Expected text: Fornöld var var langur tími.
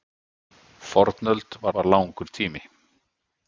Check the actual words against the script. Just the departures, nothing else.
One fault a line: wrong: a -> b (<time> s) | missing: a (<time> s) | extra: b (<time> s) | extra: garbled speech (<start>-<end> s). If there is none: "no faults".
no faults